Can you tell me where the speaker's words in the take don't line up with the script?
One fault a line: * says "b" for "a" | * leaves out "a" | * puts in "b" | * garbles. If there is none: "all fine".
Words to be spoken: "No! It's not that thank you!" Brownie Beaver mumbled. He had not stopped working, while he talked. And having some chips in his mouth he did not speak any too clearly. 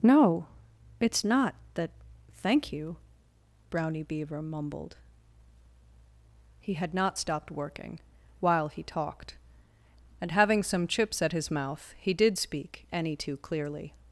* says "at" for "in"
* leaves out "not"